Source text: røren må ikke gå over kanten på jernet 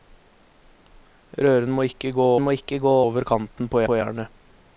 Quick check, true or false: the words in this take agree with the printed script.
false